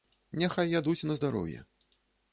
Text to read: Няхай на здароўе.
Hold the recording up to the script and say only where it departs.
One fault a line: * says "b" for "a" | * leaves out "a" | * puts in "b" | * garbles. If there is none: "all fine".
* puts in "ядуць"